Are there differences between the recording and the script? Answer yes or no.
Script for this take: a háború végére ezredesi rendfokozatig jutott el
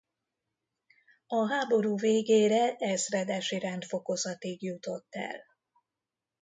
no